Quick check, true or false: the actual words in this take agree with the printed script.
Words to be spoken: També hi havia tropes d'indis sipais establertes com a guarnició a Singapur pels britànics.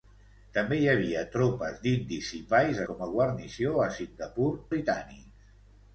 false